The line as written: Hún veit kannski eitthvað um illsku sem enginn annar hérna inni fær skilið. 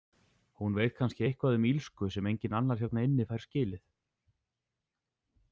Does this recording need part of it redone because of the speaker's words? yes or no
no